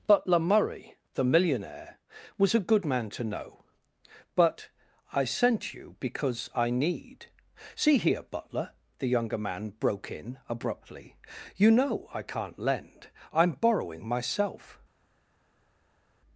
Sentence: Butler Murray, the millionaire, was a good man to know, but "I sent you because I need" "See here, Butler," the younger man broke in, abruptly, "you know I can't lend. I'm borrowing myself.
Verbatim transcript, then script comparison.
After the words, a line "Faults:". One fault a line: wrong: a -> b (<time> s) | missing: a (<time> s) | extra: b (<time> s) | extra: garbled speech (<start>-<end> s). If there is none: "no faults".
Butler Murray, the millionaire, was a good man to know, but "I sent you because I need" "See here, Butler," the younger man broke in, abruptly, "you know I can't lend. I'm borrowing myself.
Faults:
no faults